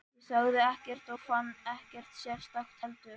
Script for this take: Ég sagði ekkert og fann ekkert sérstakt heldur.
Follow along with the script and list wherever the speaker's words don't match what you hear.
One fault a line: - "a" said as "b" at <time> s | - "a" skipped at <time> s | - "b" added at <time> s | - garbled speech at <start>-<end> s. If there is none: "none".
none